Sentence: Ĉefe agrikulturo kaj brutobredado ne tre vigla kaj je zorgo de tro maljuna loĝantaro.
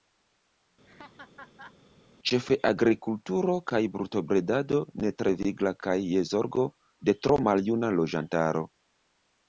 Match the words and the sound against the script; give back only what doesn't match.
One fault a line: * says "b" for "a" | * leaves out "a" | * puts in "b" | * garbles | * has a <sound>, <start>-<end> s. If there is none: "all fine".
* has a laugh, 0.9-1.8 s